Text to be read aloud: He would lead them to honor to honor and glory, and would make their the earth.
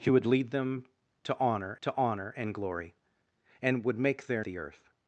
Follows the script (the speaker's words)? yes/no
yes